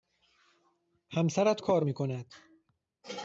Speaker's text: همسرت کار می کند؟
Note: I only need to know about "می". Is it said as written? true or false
true